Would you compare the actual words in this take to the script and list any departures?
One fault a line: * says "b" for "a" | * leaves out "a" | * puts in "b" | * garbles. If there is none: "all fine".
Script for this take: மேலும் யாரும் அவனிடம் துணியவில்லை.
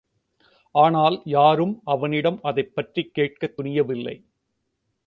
* says "ஆனால்" for "மேலும்"
* puts in "அதைப்பற்றிக் கேட்கத்"